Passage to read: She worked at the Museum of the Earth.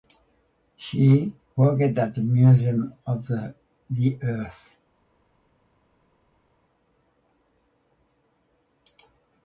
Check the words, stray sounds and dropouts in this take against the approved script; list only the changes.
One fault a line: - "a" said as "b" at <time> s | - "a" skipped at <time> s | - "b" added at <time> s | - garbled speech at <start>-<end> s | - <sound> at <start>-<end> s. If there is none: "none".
none